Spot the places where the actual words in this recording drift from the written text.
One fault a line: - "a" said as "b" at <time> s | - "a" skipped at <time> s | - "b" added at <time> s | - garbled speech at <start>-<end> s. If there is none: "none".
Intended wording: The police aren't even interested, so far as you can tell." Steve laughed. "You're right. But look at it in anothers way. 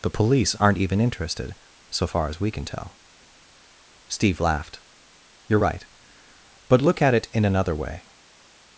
- "you" said as "we" at 2.4 s
- "anothers" said as "another" at 7.4 s